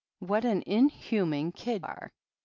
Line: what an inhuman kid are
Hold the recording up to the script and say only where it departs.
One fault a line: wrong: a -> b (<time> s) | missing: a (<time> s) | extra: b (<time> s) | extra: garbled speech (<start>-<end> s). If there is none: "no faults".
no faults